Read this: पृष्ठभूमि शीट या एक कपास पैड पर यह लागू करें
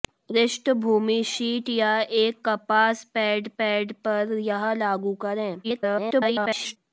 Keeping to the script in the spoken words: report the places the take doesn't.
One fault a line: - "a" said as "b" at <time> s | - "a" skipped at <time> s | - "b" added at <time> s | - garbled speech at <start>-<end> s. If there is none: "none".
- "पैड" added at 3.6 s
- garbled speech at 5.6-6.8 s